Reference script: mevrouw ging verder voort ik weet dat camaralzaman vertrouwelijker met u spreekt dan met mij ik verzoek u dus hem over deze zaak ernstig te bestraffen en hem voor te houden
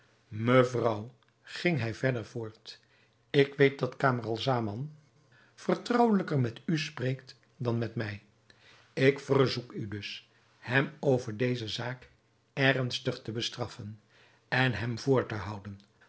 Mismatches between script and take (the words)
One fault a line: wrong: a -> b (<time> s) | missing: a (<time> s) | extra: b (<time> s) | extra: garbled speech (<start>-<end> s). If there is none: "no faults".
extra: hij (1.8 s)